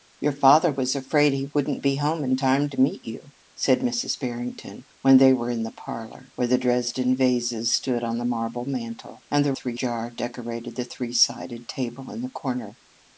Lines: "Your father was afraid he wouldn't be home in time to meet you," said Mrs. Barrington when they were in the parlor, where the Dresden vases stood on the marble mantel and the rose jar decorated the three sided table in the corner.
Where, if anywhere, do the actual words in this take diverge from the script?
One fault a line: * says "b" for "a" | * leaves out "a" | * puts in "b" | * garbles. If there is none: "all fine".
* says "three" for "rose"